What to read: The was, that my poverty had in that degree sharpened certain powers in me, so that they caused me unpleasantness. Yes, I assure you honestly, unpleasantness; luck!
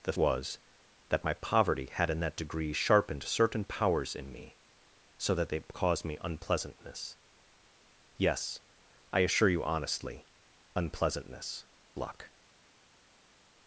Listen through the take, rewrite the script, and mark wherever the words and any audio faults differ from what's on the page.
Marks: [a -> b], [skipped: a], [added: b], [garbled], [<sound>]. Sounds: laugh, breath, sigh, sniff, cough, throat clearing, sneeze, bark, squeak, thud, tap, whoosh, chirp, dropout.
The was, that my poverty had in that degree sharpened certain powers in me, so that they caused me unpleasantness. Yes, I assure you honestly, unpleasantness; luck!